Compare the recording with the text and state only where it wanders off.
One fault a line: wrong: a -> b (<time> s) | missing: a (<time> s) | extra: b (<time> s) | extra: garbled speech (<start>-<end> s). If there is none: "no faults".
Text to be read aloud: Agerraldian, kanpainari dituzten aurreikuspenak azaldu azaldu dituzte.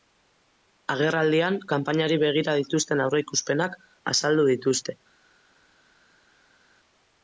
extra: begira (2.2 s)
missing: azaldu (4.5 s)